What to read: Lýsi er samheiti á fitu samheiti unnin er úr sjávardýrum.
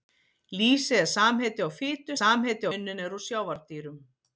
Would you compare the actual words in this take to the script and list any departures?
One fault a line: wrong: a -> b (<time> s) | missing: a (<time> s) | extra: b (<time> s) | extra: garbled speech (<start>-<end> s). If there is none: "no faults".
no faults